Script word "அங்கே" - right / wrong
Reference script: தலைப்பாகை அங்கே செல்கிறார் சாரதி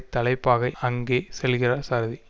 right